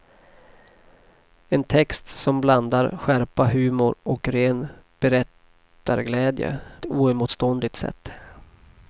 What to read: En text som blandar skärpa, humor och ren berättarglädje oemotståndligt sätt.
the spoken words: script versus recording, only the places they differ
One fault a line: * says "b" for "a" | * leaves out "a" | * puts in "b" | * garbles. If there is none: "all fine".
all fine